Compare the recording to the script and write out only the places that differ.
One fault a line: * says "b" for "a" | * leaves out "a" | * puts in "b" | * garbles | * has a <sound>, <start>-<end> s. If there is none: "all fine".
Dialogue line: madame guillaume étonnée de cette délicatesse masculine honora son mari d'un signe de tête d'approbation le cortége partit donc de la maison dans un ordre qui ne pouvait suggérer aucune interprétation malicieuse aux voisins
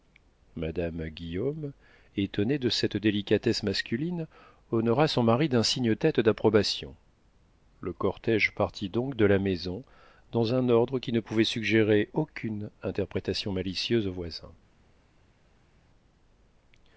* leaves out "de"